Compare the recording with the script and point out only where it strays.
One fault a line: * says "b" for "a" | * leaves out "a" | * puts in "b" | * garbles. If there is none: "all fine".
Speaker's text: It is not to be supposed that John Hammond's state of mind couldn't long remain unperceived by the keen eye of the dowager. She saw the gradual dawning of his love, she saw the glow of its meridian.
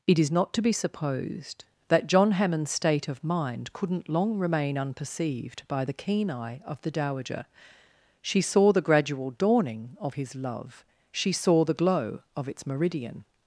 all fine